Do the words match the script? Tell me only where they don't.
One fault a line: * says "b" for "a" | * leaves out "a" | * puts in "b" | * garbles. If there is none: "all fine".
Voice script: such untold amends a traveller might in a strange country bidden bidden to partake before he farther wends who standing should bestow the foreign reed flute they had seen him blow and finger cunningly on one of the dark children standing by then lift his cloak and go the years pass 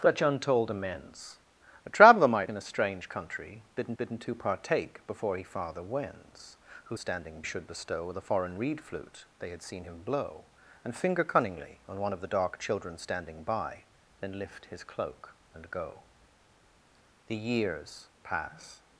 all fine